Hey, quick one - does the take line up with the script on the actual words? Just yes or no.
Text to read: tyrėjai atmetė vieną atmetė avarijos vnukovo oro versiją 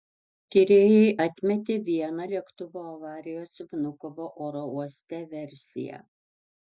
no